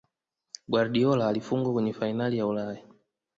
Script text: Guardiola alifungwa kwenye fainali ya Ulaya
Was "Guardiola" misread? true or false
false